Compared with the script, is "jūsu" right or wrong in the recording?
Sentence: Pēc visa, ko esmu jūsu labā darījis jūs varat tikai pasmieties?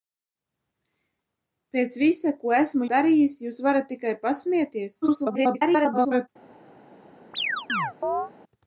wrong